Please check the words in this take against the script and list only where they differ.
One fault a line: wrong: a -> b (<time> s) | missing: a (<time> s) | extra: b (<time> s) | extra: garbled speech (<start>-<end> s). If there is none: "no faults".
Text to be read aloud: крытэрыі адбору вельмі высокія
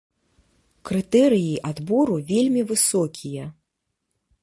no faults